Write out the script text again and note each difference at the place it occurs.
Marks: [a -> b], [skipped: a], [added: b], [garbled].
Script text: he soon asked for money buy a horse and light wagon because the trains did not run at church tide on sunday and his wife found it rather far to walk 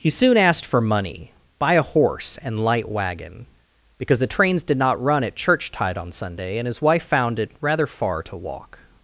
he soon asked for money buy a horse and light wagon because the trains did not run at church tide on sunday and his wife found it rather far to walk